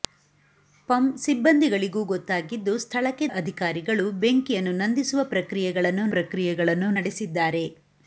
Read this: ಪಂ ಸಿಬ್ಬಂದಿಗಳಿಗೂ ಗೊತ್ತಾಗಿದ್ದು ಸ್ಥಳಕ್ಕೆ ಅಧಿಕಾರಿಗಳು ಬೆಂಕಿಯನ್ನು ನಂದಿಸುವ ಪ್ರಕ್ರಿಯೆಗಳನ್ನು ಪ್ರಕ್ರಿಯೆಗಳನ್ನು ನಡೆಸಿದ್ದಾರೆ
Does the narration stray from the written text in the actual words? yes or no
no